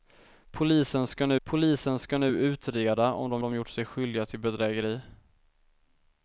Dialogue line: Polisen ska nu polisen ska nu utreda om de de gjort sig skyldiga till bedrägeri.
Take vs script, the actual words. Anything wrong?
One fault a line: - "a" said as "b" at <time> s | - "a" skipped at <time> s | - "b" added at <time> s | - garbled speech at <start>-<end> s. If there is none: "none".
none